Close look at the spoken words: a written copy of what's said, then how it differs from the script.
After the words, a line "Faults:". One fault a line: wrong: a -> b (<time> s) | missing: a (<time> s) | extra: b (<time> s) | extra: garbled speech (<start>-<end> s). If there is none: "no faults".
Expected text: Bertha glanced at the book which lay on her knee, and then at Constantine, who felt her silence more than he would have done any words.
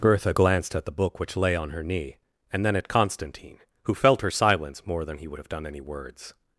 Bertha glanced at the book which lay on her knee, and then at Constantine, who felt her silence more than he would have done any words.
Faults:
no faults